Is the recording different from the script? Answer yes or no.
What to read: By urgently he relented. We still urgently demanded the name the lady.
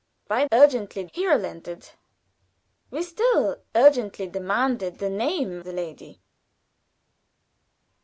no